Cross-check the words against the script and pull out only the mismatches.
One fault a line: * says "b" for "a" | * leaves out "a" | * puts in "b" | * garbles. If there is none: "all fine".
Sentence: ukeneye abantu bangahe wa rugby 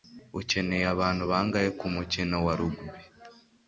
* puts in "kumukino"